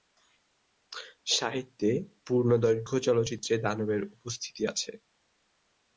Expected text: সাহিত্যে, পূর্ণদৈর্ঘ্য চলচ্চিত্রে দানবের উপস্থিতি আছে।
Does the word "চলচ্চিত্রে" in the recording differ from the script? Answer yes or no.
no